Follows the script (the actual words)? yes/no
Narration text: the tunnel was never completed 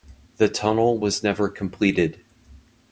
yes